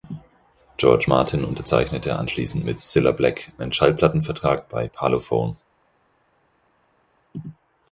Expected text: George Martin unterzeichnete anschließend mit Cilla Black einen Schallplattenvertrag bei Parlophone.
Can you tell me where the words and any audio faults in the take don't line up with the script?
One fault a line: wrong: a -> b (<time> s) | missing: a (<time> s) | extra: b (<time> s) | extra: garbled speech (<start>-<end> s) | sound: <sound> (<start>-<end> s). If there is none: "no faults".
no faults